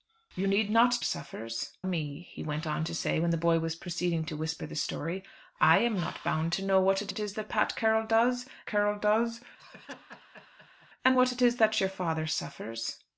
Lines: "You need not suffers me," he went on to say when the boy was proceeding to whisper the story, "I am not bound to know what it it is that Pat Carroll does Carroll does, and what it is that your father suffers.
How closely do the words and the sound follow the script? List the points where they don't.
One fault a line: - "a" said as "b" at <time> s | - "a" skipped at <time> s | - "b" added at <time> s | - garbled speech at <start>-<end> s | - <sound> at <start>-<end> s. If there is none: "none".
- laugh at 9.6-10.9 s